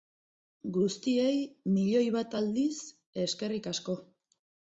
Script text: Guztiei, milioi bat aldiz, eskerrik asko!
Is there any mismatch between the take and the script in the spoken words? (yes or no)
no